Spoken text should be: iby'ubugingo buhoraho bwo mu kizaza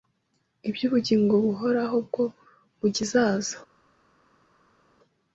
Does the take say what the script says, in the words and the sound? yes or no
yes